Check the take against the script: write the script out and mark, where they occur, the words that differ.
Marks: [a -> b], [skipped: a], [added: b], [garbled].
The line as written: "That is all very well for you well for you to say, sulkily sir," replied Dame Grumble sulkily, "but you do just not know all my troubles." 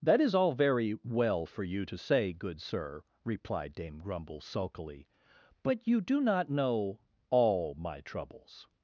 "That is all very well for you [skipped: well for you] to say, [sulkily -> good] sir," replied Dame Grumble sulkily, "but you do [skipped: just] not know all my troubles."